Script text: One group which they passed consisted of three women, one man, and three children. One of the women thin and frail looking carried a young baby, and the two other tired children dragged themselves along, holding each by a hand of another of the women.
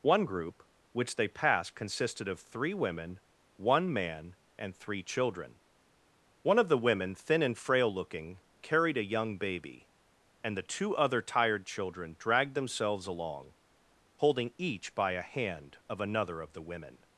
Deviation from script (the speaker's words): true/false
false